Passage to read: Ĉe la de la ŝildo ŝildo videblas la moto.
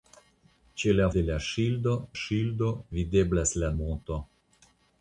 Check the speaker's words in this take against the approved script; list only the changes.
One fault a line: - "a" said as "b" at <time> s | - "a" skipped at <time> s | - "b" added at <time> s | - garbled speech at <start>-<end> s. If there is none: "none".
none